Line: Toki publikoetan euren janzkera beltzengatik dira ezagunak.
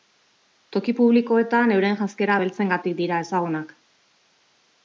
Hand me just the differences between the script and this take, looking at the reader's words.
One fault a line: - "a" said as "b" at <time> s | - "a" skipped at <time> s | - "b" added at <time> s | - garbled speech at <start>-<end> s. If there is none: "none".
none